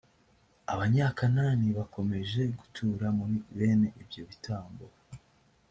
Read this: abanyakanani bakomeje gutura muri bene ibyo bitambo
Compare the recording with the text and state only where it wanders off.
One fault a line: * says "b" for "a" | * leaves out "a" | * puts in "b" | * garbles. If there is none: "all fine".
all fine